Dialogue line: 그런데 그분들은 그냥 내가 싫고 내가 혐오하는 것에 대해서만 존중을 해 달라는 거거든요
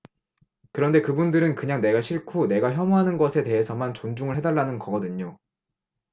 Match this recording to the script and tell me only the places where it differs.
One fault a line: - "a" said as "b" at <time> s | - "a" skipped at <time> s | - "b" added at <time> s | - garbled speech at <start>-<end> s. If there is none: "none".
none